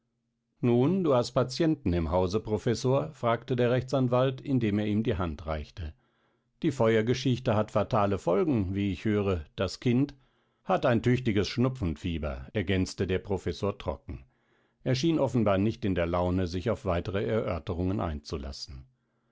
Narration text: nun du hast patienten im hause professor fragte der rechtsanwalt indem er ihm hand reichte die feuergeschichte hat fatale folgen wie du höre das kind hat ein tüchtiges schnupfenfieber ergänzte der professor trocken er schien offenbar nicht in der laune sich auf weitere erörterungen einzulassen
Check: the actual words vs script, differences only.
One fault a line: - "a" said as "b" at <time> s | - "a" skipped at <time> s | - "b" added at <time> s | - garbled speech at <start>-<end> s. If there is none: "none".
- "die" added at 5.0 s
- "du" said as "ich" at 8.9 s